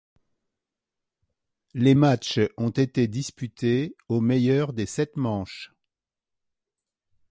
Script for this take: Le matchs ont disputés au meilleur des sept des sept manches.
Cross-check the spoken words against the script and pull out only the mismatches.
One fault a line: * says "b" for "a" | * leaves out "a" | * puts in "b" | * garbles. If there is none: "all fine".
* says "Les" for "Le"
* puts in "été"
* leaves out "des sept"